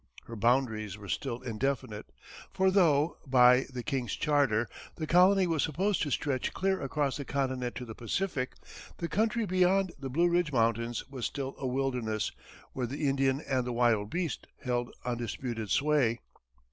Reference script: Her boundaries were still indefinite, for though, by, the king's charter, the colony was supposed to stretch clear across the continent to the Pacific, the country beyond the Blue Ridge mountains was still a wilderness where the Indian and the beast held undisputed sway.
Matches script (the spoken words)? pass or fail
fail